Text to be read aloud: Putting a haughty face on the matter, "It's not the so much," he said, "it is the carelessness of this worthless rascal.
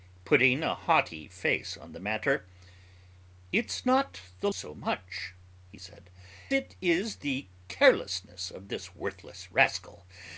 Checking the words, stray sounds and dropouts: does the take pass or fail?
pass